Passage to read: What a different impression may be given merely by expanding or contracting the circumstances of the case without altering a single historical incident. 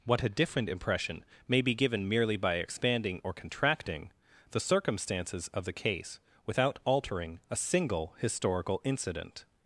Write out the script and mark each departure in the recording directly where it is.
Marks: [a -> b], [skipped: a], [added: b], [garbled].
What a different impression may be given merely by expanding or contracting the circumstances of the case without altering a single historical incident.